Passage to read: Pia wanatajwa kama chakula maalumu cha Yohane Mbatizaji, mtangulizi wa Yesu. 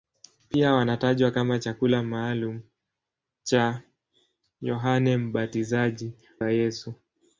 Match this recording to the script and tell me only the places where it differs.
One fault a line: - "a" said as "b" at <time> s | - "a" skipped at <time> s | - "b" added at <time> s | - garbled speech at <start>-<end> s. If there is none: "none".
- "mtangulizi" skipped at 6.1 s